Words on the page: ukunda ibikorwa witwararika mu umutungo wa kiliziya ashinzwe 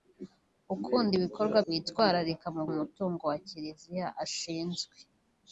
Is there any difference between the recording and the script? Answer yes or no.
no